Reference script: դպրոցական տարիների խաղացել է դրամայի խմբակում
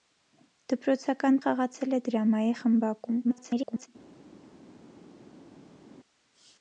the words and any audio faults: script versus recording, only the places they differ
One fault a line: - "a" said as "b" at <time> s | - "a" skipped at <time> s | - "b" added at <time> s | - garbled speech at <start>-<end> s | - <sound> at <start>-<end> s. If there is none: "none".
- "տարիների" skipped at 1.4 s
- garbled speech at 3.2-3.9 s